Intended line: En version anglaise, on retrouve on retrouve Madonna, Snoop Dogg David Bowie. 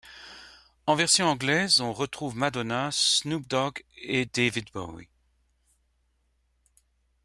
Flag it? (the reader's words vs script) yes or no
yes